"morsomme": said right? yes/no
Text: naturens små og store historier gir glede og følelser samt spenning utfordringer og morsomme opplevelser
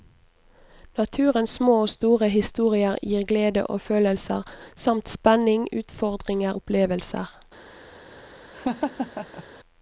no